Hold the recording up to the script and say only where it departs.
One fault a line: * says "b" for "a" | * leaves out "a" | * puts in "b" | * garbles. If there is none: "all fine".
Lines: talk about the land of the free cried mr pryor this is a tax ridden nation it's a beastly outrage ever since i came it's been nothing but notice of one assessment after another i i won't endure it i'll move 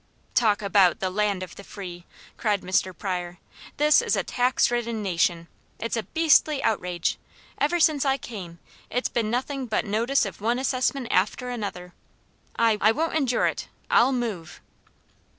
all fine